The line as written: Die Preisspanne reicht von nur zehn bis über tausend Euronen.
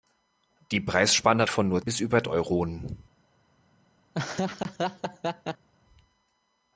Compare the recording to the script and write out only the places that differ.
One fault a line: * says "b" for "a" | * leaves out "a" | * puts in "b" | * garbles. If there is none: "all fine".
* leaves out "reicht"
* leaves out "zehn"
* leaves out "tausend"